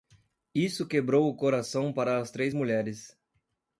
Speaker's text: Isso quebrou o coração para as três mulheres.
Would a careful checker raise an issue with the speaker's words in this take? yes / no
no